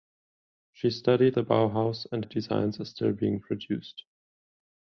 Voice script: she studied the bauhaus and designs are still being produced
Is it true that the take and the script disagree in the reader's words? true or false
false